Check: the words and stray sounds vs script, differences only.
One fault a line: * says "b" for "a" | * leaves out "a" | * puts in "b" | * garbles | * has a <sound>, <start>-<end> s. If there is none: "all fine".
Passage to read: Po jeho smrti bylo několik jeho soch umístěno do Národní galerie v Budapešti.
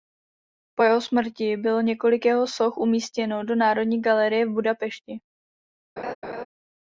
* has a laugh, 6.0-6.5 s